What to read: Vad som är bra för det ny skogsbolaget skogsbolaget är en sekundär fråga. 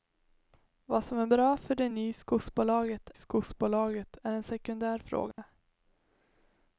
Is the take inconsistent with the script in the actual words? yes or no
no